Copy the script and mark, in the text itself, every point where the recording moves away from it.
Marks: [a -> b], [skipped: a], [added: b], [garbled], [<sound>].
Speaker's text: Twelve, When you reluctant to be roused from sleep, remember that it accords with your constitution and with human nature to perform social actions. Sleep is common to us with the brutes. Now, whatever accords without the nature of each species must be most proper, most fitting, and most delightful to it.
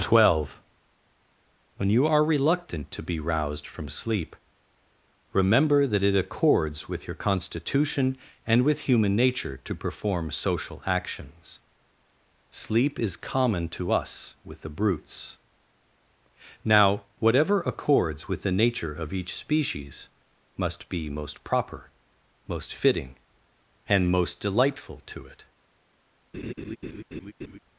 Twelve, When you [added: are] reluctant to be roused from sleep, remember that it accords with your constitution and with human nature to perform social actions. Sleep is common to us with the brutes. Now, whatever accords [without -> with] the nature of each species must be most proper, most fitting, and most delightful to it. [laugh]